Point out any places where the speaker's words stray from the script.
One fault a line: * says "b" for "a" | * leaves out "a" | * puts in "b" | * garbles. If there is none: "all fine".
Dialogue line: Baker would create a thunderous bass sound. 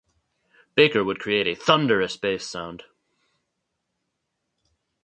all fine